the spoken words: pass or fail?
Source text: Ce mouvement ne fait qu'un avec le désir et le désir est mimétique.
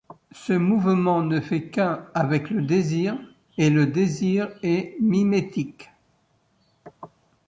pass